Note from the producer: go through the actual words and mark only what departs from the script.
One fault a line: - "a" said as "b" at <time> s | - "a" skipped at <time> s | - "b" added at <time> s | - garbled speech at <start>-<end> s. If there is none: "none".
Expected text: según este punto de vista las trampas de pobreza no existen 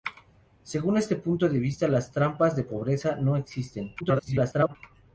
- garbled speech at 4.0-4.8 s